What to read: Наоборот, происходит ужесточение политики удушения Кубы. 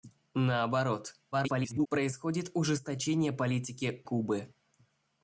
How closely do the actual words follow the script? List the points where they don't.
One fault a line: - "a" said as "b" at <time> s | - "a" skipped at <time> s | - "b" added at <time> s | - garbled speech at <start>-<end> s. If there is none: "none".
- garbled speech at 1.3-1.9 s
- "удушения" skipped at 4.0 s